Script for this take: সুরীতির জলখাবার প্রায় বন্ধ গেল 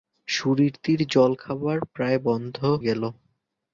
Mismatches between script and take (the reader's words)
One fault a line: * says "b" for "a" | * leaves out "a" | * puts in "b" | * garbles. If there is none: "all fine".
all fine